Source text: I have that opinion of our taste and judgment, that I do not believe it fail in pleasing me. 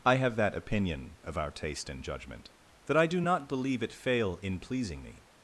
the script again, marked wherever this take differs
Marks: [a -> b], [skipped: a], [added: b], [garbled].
I have that opinion of our taste and judgment, that I do not believe it fail in pleasing me.